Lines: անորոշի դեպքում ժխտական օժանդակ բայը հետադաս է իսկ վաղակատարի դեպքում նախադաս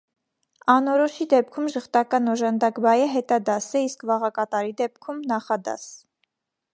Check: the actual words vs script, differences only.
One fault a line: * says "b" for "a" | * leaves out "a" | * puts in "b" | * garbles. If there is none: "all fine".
all fine